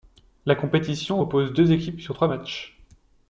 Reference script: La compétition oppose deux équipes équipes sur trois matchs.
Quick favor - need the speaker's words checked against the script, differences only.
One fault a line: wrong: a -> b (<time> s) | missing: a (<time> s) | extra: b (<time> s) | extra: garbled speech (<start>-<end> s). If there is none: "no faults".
missing: équipes (2.0 s)